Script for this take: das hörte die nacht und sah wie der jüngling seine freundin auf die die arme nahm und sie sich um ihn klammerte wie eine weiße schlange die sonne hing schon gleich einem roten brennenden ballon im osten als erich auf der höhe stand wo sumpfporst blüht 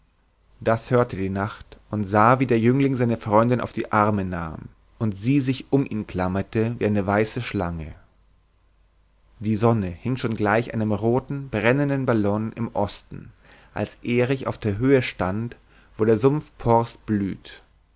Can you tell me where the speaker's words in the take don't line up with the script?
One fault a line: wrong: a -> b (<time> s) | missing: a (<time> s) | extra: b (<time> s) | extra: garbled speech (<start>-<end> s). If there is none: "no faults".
missing: die (3.9 s)
extra: der (16.0 s)